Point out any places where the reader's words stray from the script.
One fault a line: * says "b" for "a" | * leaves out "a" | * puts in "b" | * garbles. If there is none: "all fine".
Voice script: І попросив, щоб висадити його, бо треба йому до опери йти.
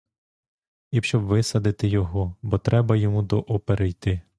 * leaves out "попросив"